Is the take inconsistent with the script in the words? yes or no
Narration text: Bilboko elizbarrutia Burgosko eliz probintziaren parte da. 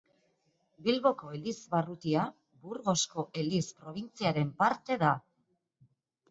no